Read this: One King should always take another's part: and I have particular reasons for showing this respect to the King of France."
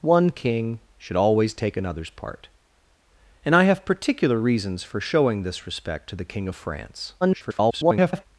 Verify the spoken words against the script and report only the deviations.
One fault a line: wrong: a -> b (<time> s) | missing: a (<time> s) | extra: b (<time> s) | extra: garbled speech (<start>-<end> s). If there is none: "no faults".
extra: garbled speech (7.2-8.3 s)